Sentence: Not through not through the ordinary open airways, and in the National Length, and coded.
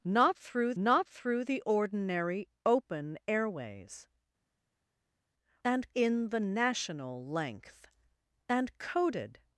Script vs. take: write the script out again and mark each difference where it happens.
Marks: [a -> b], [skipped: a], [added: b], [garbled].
Not through not through the ordinary open airways, and in the National Length, and coded.